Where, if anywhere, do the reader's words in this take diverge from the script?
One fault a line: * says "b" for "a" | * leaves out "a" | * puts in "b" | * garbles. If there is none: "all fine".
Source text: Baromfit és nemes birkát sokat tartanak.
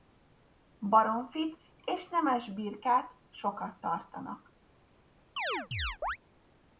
all fine